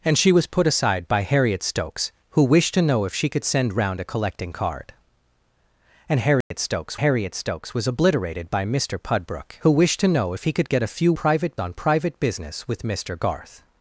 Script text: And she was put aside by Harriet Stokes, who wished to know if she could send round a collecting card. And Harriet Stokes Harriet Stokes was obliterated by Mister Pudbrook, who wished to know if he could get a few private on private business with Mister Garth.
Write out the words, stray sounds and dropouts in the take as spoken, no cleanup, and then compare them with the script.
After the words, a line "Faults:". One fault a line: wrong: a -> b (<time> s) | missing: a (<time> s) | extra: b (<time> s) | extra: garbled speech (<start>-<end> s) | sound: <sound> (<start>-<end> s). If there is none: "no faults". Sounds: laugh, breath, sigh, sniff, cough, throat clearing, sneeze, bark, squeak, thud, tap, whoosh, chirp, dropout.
And she was put aside by Harriet Stokes, who wished to know if she could send round a collecting card. And Harriet Stokes Harriet Stokes was obliterated by Mister Pudbrook, who wished to know if he could get a few private on private business with Mister Garth.
Faults:
sound: dropout (6.4-6.5 s)